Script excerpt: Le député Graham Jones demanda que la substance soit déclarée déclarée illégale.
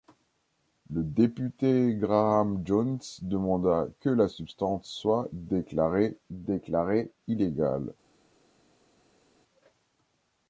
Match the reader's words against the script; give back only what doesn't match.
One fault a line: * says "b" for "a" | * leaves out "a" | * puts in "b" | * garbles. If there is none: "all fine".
all fine